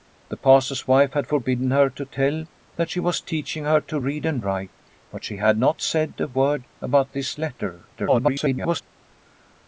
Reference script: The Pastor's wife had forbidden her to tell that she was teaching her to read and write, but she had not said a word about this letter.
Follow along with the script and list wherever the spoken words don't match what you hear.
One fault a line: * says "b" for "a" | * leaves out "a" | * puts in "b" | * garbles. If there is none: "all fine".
* garbles